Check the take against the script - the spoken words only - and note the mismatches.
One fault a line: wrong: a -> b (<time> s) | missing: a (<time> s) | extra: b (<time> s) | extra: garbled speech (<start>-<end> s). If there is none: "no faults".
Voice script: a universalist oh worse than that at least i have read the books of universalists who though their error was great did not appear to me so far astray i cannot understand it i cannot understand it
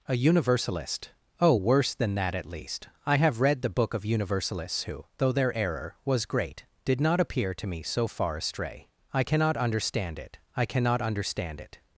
wrong: books -> book (3.7 s)